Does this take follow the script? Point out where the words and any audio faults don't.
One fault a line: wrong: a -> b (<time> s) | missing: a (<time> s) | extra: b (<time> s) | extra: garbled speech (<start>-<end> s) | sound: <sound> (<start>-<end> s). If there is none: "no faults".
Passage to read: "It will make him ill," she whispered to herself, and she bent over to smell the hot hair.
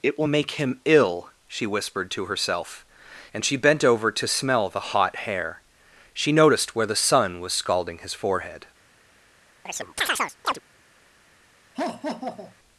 extra: She noticed where the sun was scalding his forehead (6.1 s)
sound: chirp (9.7-10.6 s)
sound: laugh (11.7-12.5 s)